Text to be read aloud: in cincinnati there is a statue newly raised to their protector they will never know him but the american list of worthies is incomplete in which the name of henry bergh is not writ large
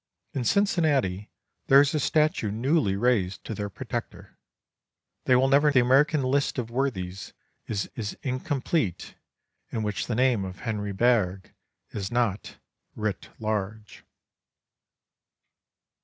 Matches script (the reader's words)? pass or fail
fail